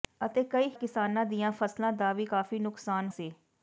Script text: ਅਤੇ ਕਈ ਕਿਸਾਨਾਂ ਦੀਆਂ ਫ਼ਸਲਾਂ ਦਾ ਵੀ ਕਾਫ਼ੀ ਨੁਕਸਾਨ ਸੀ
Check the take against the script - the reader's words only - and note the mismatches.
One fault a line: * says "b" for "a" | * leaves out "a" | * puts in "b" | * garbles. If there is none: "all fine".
all fine